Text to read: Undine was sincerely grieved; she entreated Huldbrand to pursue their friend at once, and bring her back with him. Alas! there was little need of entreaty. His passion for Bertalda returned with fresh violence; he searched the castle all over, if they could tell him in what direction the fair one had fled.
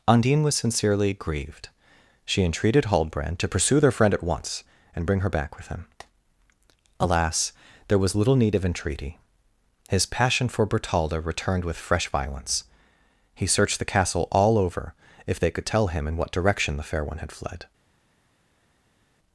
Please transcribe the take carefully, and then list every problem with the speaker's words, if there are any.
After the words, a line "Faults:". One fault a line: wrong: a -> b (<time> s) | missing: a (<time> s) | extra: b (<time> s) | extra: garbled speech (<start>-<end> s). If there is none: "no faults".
Undine was sincerely grieved; she entreated Huldbrand to pursue their friend at once, and bring her back with him. Alas! there was little need of entreaty. His passion for Bertalda returned with fresh violence; he searched the castle all over, if they could tell him in what direction the fair one had fled.
Faults:
no faults